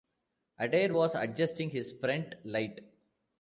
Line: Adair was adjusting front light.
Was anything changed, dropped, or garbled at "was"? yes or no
no